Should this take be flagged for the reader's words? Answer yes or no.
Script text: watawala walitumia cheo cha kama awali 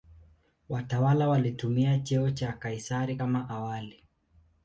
yes